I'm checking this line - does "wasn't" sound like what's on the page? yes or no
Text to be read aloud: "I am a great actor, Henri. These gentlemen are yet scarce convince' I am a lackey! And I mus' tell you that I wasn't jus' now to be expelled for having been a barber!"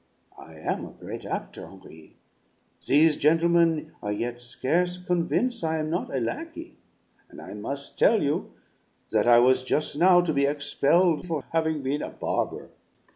no